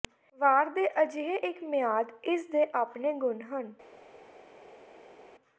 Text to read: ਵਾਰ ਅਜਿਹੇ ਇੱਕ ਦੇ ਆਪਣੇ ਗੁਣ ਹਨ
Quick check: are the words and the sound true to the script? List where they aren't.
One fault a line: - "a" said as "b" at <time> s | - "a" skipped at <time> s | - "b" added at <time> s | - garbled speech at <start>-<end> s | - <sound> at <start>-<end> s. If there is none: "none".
- "ਦੇ" added at 0.7 s
- "ਮਿਆਦ ਇਸ" added at 1.6 s